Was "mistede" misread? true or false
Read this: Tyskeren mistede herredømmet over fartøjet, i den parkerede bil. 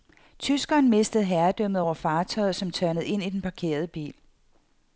false